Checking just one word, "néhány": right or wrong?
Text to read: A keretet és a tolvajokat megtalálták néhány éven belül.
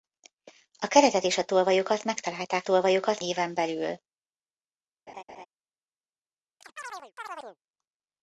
wrong